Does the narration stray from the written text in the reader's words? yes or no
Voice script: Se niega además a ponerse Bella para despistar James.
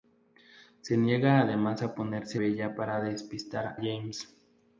no